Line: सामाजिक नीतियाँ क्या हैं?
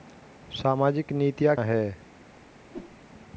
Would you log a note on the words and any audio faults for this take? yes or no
yes